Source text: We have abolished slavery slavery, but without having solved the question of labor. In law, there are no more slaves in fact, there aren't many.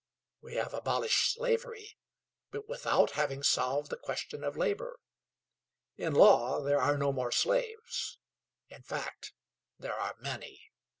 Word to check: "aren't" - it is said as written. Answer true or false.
false